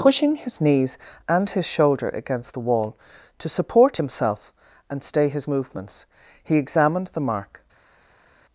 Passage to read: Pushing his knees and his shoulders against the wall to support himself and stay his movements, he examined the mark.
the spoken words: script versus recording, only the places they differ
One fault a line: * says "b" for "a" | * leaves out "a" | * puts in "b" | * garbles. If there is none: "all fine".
* says "shoulder" for "shoulders"